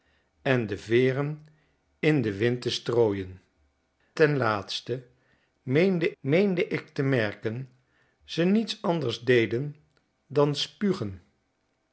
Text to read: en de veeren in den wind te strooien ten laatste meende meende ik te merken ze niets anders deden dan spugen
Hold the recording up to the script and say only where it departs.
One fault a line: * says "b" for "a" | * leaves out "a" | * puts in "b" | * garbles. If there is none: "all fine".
all fine